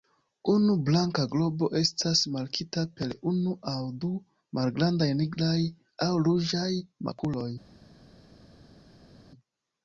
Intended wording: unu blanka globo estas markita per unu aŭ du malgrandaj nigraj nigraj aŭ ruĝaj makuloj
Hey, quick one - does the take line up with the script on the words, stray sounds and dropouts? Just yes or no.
no